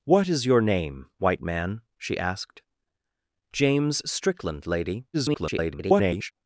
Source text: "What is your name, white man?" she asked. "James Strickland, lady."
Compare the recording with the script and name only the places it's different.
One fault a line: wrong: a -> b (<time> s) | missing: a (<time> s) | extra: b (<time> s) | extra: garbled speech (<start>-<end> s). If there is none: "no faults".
extra: garbled speech (5.1-6.3 s)